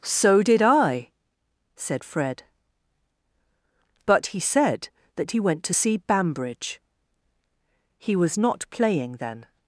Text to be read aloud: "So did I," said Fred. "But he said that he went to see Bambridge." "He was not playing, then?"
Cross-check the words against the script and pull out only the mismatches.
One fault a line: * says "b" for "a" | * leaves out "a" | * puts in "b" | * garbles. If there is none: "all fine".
all fine